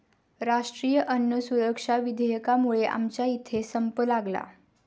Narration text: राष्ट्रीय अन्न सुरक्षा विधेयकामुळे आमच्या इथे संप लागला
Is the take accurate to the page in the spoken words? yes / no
yes